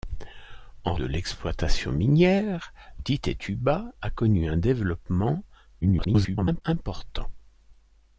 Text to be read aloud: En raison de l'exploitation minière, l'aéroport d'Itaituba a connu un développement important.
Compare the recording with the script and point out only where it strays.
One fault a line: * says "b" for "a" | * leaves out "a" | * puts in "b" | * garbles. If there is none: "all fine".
* leaves out "raison"
* leaves out "l'aéroport"
* garbles